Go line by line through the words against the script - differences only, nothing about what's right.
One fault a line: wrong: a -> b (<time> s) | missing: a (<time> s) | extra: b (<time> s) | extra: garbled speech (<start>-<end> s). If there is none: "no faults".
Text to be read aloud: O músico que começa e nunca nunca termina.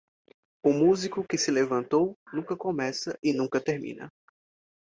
extra: se levantou nunca (1.4 s)
missing: nunca (3.6 s)